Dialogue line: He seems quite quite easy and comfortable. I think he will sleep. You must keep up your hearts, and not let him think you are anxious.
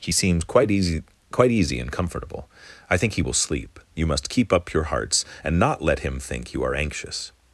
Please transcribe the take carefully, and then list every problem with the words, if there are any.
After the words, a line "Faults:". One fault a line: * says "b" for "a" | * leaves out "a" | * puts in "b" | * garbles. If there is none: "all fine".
He seems quite easy quite easy and comfortable. I think he will sleep. You must keep up your hearts, and not let him think you are anxious.
Faults:
* puts in "easy"